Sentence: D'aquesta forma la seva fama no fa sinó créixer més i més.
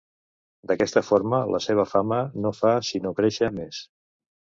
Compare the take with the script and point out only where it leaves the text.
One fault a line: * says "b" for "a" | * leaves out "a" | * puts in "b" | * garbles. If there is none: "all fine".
* leaves out "més"